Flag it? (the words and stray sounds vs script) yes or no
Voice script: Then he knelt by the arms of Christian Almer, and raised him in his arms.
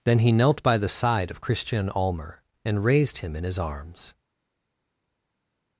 yes